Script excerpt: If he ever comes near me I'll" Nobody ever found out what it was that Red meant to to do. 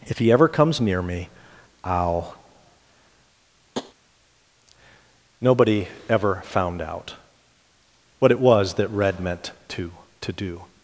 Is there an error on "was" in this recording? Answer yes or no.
no